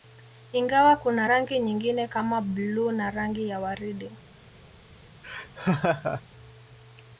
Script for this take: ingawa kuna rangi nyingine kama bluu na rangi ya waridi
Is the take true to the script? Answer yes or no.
yes